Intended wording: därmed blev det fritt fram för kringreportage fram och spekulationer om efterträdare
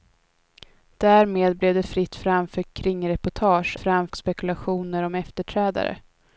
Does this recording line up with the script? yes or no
yes